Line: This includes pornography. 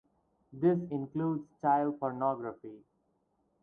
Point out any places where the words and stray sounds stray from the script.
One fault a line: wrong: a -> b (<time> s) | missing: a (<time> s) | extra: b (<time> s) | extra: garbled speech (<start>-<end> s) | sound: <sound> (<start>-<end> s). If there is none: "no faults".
extra: child (1.6 s)